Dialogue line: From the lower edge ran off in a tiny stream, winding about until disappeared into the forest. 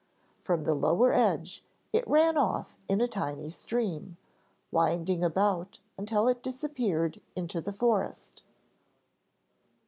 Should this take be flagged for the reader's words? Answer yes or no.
yes